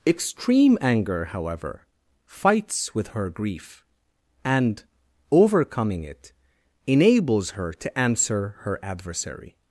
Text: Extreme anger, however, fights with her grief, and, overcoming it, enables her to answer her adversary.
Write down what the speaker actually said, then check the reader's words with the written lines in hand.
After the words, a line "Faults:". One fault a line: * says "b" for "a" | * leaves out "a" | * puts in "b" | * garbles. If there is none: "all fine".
Extreme anger, however, fights with her grief, and, overcoming it, enables her to answer her adversary.
Faults:
all fine